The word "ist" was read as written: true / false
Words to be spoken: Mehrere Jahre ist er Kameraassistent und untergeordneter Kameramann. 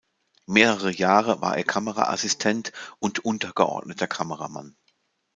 false